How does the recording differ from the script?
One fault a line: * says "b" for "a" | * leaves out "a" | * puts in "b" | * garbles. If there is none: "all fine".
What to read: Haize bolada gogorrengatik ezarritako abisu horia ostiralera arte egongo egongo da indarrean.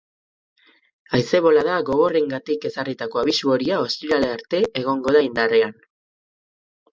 * leaves out "egongo"